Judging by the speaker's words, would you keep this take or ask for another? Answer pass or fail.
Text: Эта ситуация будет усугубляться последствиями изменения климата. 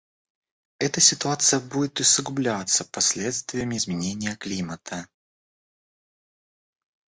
pass